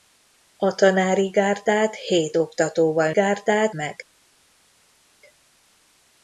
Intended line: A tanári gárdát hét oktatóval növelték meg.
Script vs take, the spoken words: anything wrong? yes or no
yes